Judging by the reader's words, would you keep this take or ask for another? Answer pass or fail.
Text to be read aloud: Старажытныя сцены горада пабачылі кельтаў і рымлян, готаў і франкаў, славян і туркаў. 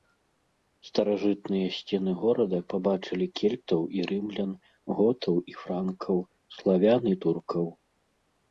pass